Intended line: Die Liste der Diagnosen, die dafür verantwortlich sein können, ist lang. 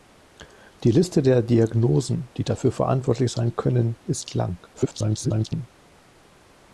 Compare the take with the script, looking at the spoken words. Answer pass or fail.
fail